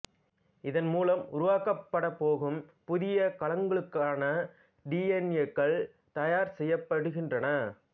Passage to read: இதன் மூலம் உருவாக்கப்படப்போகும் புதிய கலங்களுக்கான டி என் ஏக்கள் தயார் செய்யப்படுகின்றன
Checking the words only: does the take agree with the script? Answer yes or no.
yes